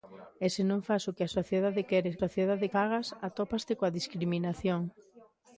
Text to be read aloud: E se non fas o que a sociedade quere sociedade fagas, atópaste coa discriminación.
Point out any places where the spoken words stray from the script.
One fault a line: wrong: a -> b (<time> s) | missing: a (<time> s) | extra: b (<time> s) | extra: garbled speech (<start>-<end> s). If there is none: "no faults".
no faults